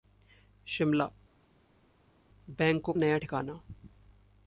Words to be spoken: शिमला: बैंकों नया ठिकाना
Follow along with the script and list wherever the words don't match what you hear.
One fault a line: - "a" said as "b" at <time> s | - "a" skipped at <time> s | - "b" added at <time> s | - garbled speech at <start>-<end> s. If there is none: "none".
none